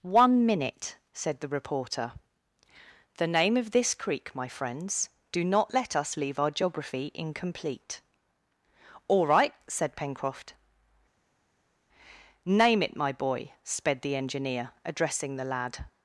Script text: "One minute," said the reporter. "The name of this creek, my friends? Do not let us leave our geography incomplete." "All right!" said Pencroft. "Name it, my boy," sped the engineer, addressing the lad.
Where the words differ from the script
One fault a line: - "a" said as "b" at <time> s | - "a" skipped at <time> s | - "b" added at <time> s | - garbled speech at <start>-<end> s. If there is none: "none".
none